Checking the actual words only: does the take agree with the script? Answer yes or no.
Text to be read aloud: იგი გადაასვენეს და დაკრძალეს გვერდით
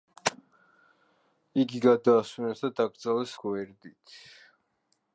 yes